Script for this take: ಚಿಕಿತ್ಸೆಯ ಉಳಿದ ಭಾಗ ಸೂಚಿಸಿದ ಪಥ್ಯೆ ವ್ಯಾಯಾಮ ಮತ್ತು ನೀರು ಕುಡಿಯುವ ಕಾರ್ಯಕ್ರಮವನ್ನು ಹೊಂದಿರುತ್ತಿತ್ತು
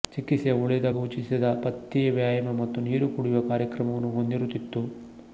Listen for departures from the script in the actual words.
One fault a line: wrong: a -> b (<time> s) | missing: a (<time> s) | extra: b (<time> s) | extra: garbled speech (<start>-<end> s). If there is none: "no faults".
missing: ಭಾಗ (0.9 s)